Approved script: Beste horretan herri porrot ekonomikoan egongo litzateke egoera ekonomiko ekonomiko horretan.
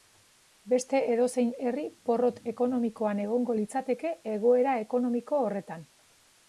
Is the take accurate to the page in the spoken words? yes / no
no